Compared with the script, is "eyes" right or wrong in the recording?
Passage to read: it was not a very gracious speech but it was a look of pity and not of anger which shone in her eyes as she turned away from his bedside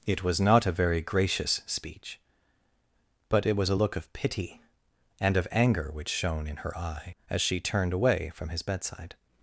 wrong